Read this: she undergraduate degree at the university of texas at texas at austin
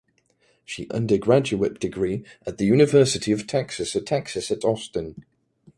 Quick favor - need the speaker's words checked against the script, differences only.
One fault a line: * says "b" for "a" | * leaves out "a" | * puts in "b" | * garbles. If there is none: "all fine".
all fine